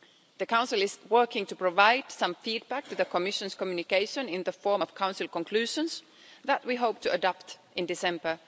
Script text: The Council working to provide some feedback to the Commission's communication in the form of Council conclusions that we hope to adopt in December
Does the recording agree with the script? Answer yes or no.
no